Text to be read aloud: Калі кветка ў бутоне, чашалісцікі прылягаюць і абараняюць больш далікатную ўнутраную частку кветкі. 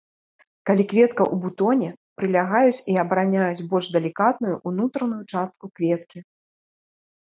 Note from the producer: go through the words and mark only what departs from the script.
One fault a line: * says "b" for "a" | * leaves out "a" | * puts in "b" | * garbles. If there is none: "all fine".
* leaves out "чашалісцікі"